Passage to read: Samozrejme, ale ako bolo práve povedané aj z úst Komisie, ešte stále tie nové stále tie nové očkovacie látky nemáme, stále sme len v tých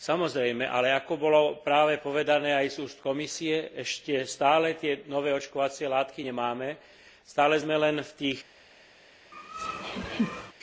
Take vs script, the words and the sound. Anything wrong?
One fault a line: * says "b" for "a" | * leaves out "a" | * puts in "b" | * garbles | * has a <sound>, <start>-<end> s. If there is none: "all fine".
* leaves out "stále tie nové"
* has a laugh, 9.3-10.5 s